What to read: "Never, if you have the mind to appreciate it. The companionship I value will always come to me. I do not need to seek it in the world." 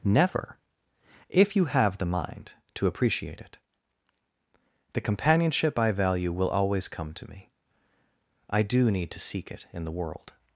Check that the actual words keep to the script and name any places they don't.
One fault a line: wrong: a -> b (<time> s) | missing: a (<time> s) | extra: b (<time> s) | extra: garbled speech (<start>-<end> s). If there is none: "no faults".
missing: not (8.9 s)